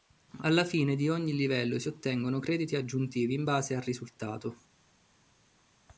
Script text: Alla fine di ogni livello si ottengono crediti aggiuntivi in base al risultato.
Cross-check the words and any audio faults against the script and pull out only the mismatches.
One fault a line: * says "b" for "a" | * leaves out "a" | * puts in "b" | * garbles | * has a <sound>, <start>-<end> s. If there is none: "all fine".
all fine